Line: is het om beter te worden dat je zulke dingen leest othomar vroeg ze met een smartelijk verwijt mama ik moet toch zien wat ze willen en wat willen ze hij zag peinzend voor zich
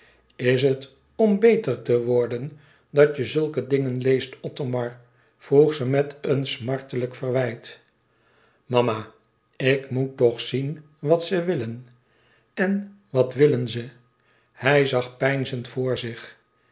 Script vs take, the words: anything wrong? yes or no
no